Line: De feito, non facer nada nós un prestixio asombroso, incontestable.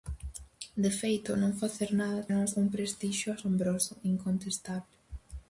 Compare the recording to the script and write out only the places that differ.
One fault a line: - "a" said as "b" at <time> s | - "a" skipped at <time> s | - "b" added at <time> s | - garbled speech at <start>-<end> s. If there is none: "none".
none